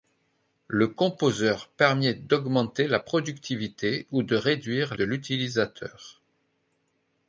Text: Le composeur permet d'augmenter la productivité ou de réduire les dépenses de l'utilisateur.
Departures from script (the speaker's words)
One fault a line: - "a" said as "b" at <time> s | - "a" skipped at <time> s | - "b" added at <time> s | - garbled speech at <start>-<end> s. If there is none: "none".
- "les dépenses" skipped at 4.9 s